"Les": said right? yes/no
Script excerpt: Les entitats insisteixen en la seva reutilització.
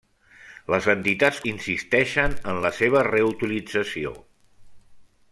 yes